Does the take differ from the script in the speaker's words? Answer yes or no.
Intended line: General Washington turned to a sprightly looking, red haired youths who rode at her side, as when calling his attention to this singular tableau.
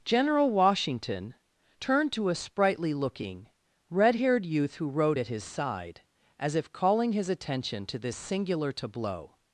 yes